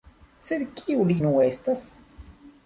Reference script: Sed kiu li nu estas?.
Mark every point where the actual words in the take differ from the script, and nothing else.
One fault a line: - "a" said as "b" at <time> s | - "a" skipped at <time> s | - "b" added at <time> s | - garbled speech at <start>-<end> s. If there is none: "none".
none